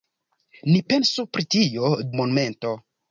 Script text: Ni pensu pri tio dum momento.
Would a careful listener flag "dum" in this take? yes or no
yes